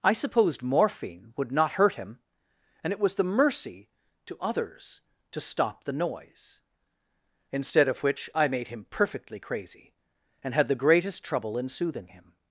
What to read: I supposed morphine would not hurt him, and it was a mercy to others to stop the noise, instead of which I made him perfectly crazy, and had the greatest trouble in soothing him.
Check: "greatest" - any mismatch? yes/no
no